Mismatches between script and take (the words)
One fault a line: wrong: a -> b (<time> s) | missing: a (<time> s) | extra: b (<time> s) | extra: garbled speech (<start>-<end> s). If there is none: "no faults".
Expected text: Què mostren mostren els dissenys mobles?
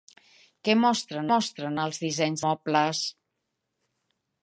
no faults